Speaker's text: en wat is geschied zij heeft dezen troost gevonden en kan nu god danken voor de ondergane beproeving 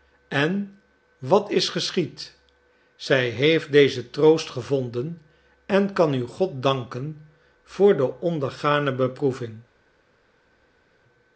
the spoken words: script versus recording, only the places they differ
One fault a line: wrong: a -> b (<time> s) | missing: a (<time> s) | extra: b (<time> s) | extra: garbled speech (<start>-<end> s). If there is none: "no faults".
no faults